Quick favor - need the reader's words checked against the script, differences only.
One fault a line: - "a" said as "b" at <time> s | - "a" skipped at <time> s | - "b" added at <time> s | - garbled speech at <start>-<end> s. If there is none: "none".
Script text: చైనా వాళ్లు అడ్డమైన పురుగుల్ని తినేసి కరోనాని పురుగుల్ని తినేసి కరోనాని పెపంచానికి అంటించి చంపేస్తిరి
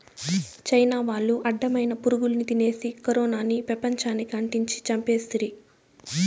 - "పురుగుల్ని తినేసి కరోనాని" skipped at 3.6 s